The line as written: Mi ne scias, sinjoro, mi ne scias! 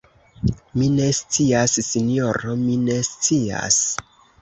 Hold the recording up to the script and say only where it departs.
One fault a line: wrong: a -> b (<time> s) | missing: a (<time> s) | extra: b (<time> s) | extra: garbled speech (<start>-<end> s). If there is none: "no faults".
no faults